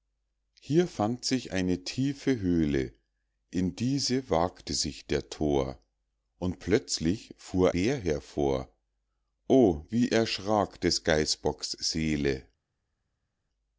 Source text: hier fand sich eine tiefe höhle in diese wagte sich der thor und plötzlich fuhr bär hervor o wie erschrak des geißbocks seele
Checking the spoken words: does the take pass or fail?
pass